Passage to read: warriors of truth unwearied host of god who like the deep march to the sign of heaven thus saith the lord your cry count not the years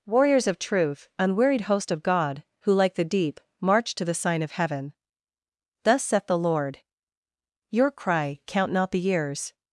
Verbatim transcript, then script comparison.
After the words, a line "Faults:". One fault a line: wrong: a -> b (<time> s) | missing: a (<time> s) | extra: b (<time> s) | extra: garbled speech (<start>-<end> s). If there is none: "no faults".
warriors of truth unwearied host of god who like the deep march to the sign of heaven thus saith the lord your cry count not the years
Faults:
no faults